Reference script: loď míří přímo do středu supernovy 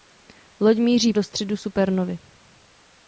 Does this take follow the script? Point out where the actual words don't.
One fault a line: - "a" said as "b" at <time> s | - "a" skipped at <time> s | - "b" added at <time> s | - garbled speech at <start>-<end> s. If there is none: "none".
- "přímo" skipped at 1.1 s